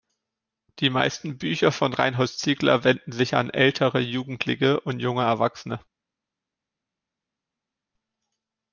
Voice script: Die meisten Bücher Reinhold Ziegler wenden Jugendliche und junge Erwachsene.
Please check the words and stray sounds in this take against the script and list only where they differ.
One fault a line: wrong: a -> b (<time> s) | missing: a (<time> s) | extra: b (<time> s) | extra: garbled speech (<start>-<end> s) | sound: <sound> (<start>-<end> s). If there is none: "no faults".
extra: von (1.7 s)
extra: sich an ältere (3.1 s)